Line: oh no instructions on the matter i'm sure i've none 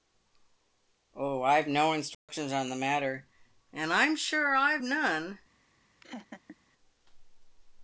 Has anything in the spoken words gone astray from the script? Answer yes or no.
yes